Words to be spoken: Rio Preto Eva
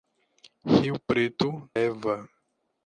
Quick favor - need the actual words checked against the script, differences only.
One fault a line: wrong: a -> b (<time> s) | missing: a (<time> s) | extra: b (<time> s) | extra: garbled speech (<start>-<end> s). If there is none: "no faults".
no faults